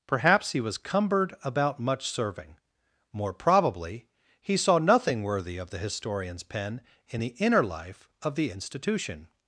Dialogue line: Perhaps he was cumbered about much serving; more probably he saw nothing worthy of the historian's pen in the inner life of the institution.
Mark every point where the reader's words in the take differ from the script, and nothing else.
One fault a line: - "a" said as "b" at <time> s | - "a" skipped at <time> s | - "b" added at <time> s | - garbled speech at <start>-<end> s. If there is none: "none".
none